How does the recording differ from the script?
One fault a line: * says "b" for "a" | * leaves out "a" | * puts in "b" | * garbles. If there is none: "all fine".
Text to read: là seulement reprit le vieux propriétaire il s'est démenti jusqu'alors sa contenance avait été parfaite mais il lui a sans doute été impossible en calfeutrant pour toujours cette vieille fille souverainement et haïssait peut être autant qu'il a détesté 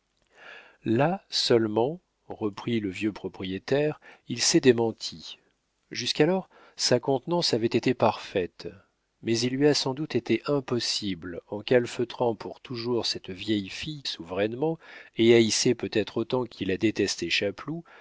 all fine